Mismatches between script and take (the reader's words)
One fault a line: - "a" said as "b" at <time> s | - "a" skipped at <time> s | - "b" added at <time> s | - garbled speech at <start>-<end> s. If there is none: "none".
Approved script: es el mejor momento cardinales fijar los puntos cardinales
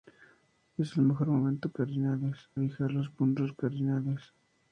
none